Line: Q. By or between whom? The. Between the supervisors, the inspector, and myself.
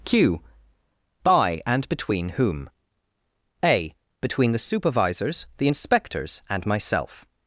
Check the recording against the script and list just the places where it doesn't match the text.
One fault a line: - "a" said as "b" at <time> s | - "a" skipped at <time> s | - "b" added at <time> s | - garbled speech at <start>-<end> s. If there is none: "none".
- "or" said as "and" at 1.6 s
- "The" said as "A" at 3.6 s
- "inspector" said as "inspectors" at 5.6 s